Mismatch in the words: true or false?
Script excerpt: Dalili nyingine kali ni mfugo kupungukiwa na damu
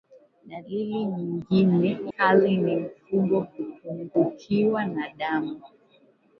false